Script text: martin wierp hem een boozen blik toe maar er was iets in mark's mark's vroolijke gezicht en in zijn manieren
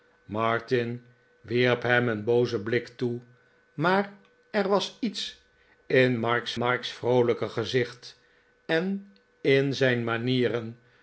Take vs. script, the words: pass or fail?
pass